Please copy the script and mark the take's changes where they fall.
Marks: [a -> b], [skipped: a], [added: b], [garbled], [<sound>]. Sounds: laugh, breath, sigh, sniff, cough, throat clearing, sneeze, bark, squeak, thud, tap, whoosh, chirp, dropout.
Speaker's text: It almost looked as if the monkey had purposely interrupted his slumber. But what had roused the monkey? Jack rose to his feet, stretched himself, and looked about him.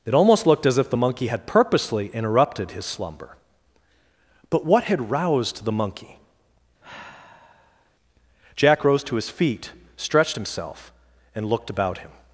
It almost looked as if the monkey had purposely interrupted his slumber. But what had roused the monkey? [sigh] Jack rose to his feet, stretched himself, and looked about him.